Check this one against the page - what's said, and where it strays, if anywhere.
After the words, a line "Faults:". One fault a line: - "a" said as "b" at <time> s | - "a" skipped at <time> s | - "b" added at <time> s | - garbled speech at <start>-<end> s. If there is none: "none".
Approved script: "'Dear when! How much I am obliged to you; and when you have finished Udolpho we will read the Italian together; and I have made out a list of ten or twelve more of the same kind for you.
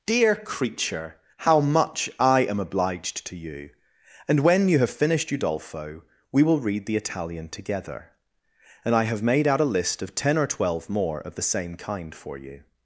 "'Dear creature! How much I am obliged to you; and when you have finished Udolpho we will read the Italian together; and I have made out a list of ten or twelve more of the same kind for you.
Faults:
- "when" said as "creature" at 0.3 s